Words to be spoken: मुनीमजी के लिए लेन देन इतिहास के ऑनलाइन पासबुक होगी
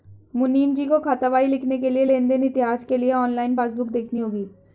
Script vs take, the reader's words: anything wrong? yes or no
yes